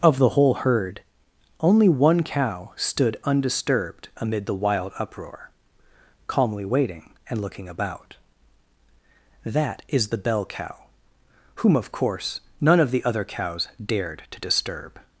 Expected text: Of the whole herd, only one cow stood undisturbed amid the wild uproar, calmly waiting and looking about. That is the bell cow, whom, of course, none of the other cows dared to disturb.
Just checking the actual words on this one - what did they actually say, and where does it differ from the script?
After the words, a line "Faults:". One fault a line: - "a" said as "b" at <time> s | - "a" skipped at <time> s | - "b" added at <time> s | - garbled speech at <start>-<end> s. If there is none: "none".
Of the whole herd, only one cow stood undisturbed amid the wild uproar, calmly waiting and looking about. That is the bell cow, whom, of course, none of the other cows dared to disturb.
Faults:
none